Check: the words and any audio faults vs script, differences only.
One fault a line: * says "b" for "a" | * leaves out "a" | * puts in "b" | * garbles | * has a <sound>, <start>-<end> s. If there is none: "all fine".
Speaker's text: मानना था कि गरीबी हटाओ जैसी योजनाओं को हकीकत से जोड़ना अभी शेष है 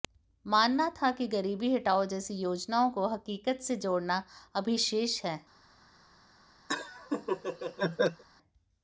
* has a laugh, 6.7-8.2 s